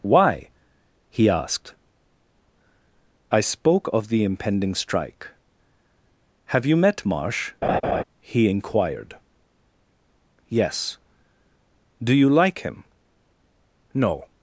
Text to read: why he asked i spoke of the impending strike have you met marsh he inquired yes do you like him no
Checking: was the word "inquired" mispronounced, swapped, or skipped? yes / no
no